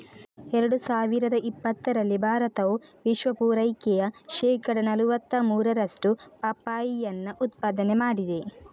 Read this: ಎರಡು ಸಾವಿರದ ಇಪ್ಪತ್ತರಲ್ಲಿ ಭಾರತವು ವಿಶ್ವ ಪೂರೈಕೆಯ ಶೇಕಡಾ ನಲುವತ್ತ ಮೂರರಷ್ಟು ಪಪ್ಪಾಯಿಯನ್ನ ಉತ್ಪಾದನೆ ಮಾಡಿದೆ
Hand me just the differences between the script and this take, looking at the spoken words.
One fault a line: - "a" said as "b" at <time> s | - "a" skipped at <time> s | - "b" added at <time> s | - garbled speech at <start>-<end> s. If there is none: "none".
none